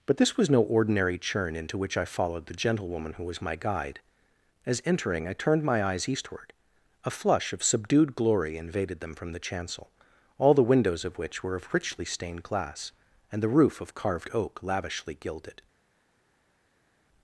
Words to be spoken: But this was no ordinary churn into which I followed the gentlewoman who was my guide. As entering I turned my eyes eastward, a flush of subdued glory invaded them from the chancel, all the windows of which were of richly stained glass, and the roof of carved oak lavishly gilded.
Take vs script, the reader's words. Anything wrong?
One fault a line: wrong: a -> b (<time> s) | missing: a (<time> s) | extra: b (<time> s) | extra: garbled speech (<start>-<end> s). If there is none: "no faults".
no faults